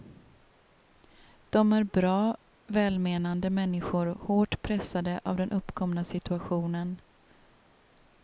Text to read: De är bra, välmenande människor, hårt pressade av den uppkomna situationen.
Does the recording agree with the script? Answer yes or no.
yes